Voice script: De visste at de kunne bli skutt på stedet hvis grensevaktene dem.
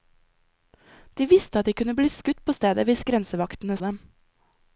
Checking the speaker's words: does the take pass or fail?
pass